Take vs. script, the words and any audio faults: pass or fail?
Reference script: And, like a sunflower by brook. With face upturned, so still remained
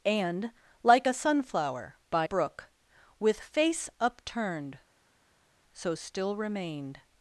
pass